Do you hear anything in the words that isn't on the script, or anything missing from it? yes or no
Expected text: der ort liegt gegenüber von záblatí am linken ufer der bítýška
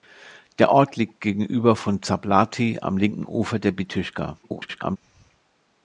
yes